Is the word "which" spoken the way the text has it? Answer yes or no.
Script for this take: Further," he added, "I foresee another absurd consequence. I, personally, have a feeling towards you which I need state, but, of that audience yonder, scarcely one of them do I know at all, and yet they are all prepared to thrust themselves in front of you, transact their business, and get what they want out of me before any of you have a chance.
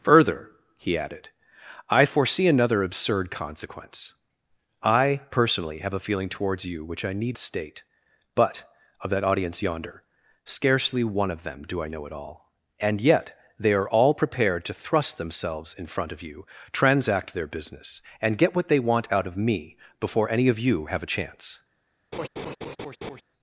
yes